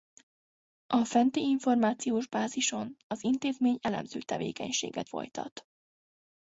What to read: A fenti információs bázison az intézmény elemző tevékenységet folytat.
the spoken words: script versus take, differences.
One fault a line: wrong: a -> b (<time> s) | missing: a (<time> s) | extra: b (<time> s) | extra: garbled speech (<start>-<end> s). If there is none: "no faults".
no faults